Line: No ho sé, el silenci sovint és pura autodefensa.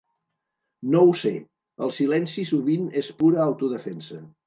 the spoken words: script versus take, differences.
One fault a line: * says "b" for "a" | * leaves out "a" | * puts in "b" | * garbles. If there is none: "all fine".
all fine